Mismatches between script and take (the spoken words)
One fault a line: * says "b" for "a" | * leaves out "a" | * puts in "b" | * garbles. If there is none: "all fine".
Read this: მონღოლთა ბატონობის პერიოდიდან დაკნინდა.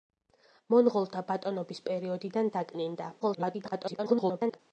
* garbles